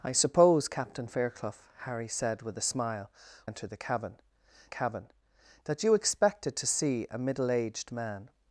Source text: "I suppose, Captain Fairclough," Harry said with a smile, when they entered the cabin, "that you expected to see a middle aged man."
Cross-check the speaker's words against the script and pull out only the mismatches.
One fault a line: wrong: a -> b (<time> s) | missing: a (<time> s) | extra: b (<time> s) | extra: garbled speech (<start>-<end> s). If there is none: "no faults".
missing: when they (3.1 s)
extra: cabin (4.7 s)